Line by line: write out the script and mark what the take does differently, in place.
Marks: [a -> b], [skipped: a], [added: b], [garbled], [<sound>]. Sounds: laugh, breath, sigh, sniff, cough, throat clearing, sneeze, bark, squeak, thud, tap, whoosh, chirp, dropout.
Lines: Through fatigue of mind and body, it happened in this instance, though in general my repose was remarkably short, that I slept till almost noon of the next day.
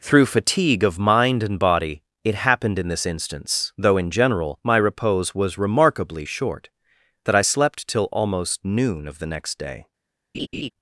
Through fatigue of mind and body, it happened in this instance, though in general my repose was remarkably short, that I slept till almost noon of the next day. [laugh]